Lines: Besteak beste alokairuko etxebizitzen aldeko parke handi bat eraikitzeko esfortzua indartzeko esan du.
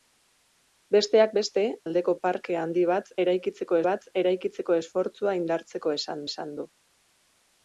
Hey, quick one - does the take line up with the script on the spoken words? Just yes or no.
no